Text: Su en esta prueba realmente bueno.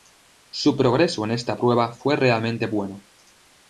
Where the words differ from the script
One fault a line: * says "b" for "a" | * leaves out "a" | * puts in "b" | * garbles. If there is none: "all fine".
* puts in "progreso"
* puts in "fue"